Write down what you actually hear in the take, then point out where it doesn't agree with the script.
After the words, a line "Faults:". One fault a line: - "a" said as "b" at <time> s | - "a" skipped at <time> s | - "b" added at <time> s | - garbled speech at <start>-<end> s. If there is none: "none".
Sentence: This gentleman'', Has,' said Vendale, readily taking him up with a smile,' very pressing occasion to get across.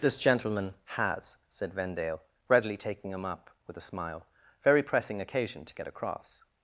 This gentleman'', Has,' said Vendale, readily taking him up with a smile,' very pressing occasion to get across.
Faults:
none